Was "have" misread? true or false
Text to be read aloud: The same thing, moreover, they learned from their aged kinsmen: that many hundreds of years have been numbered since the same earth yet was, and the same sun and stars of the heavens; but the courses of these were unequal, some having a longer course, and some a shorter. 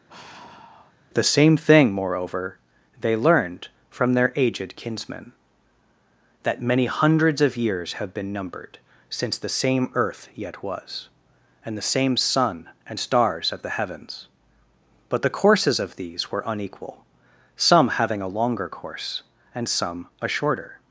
false